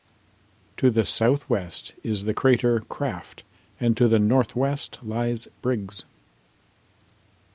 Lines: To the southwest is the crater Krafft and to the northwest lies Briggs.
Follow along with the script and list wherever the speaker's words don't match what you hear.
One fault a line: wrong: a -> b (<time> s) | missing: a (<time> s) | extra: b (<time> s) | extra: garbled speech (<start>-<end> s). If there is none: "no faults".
no faults